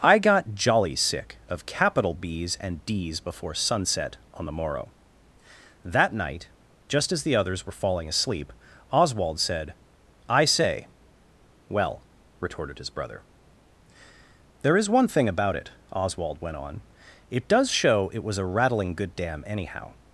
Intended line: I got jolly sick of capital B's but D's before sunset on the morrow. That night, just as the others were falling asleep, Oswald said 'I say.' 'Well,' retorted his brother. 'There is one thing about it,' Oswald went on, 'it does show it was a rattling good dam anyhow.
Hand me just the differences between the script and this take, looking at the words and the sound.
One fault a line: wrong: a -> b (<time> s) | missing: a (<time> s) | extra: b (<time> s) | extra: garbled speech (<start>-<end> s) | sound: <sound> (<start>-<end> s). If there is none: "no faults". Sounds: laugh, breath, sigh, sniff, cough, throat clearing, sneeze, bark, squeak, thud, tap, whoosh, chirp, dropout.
wrong: but -> and (2.6 s)